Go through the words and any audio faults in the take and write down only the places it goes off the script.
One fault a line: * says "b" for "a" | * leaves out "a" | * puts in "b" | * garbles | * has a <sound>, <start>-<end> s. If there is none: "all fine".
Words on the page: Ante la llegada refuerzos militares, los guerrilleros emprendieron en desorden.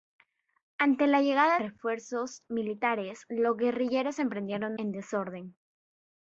all fine